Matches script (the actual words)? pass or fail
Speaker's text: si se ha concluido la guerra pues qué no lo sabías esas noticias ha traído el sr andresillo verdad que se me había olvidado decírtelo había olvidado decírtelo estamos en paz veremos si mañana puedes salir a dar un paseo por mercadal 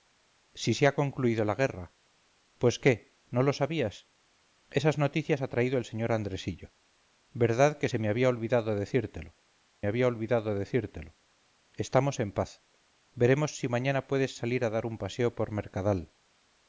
pass